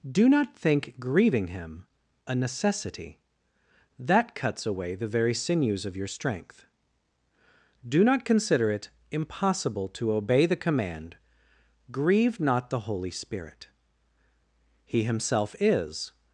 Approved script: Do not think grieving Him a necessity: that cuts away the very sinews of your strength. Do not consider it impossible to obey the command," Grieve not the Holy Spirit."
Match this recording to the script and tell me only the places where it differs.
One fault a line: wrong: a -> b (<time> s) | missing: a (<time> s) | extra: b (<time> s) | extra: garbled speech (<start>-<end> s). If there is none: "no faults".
extra: He Himself is (14.9 s)